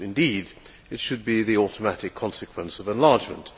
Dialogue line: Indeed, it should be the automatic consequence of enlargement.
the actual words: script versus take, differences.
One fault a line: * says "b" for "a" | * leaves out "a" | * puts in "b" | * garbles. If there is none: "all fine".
all fine